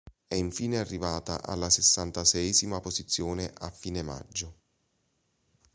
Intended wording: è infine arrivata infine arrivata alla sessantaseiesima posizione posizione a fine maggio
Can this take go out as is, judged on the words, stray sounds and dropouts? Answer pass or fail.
fail